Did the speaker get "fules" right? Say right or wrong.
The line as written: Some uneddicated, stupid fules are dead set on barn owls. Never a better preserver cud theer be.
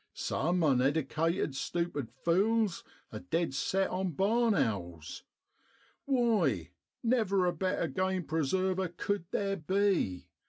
right